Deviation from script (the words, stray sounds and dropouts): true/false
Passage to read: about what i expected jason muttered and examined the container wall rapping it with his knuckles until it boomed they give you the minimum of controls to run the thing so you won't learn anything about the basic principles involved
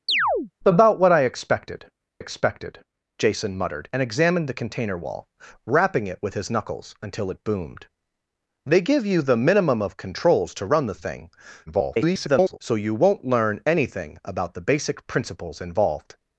true